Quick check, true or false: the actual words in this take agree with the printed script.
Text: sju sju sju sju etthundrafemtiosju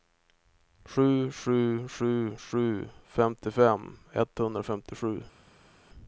false